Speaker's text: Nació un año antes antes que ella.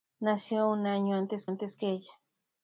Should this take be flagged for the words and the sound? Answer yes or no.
no